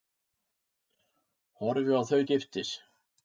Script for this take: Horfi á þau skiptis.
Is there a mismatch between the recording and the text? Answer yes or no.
no